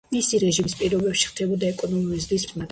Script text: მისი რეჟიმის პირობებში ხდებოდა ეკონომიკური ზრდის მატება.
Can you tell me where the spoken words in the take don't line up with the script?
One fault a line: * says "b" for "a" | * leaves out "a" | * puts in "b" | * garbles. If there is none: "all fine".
all fine